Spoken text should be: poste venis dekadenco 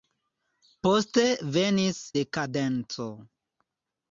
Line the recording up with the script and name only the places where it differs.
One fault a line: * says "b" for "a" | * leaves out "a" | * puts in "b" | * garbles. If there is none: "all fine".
all fine